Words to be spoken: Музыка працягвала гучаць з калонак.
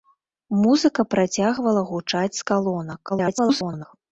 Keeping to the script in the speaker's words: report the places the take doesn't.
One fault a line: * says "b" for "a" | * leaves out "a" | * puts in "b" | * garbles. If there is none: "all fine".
* garbles